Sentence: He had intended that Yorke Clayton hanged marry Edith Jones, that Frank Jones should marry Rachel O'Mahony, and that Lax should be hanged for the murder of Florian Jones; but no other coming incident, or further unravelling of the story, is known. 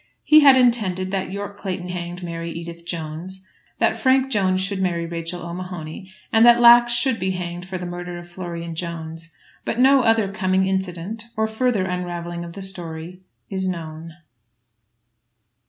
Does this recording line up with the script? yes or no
yes